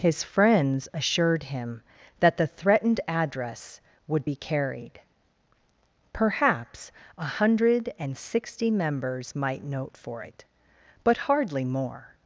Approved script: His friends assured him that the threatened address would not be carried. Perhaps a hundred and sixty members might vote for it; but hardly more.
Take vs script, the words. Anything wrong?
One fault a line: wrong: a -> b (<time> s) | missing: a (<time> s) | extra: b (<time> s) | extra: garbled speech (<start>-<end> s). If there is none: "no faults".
missing: not (4.2 s)
wrong: vote -> note (9.6 s)